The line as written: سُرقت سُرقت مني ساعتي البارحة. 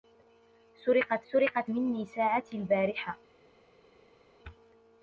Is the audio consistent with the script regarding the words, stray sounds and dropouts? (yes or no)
yes